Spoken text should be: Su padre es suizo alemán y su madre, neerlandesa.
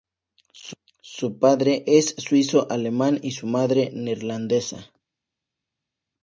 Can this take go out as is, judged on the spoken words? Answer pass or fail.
pass